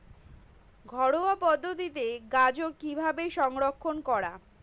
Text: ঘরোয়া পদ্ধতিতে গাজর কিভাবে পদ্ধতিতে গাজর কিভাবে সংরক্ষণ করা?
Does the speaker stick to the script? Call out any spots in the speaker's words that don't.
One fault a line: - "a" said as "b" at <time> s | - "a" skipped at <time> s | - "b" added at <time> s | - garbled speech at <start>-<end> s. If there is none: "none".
- "পদ্ধতিতে গাজর কিভাবে" skipped at 3.2 s